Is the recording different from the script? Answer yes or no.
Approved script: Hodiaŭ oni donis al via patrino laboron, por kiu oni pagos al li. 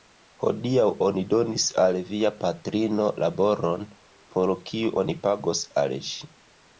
yes